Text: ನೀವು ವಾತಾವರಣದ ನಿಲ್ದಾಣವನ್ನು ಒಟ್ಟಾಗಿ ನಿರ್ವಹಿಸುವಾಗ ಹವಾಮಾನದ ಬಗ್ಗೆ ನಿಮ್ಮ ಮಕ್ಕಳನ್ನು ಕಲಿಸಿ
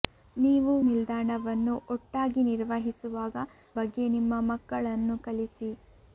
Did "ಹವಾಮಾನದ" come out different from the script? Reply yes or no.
yes